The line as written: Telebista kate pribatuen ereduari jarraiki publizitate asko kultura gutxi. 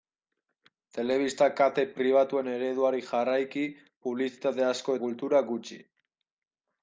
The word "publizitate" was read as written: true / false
true